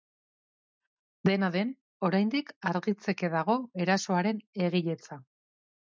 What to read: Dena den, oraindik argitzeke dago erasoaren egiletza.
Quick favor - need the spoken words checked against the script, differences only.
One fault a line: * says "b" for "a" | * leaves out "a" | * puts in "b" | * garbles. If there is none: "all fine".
all fine